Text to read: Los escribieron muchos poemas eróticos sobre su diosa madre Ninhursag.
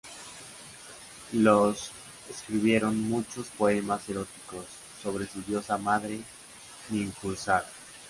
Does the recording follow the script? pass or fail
pass